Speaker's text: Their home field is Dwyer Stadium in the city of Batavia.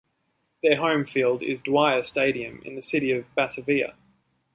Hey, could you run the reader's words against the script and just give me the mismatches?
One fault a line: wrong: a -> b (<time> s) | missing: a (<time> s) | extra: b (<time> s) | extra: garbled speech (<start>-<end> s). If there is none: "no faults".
no faults